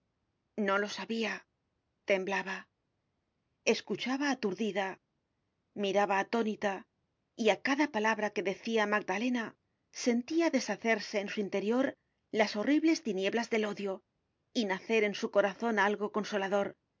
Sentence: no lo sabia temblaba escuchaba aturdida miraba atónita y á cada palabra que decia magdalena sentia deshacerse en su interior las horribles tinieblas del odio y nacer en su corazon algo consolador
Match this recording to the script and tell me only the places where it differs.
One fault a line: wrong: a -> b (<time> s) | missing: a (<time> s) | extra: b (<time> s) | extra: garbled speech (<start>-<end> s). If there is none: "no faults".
no faults